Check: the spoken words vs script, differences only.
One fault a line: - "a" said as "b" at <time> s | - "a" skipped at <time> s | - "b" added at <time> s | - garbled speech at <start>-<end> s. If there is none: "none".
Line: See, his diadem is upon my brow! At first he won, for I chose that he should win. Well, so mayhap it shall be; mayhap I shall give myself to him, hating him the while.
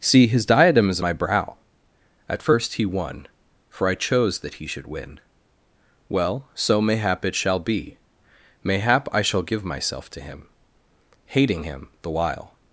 - "upon" skipped at 1.0 s